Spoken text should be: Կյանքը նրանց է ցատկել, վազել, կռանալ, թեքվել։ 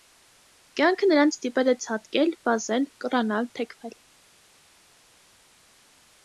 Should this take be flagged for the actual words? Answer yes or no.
yes